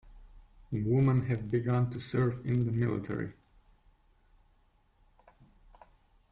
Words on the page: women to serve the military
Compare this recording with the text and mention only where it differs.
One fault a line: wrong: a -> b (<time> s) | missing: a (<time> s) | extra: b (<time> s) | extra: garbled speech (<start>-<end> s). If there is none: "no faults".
extra: have begun (1.2 s)
extra: in (2.4 s)